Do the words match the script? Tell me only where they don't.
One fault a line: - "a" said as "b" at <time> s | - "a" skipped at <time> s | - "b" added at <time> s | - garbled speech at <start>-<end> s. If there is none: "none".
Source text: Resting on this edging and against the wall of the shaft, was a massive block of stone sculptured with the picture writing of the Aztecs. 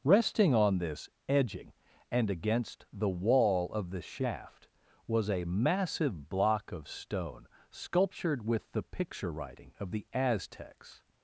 none